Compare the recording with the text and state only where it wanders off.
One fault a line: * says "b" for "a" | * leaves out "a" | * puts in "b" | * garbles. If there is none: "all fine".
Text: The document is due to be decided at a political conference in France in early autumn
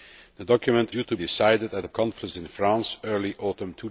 * leaves out "is"
* leaves out "be"
* leaves out "political"